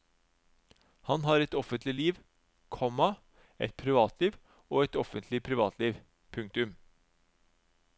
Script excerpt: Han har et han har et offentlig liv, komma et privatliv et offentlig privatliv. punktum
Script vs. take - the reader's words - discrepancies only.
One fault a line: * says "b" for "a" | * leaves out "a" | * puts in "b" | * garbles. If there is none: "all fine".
* leaves out "han har et"
* puts in "og"